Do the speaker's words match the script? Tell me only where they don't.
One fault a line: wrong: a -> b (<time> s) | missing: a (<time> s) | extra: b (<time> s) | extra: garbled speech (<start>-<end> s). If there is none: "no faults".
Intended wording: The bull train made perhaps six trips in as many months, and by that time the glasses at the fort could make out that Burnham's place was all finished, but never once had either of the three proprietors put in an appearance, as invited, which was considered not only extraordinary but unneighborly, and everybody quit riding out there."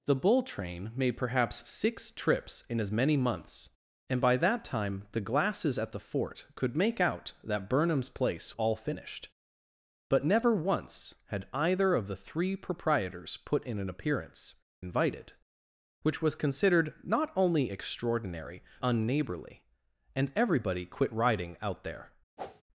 missing: was (8.6 s)
missing: as (14.6 s)
missing: but (18.6 s)